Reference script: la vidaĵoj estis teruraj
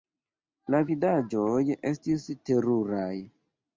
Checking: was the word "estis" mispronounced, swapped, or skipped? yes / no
no